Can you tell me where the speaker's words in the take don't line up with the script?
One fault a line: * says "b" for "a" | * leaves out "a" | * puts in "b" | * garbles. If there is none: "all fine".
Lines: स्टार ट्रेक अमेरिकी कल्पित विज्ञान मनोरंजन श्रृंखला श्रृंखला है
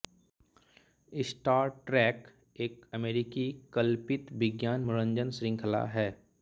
* puts in "एक"
* leaves out "श्रृंखला"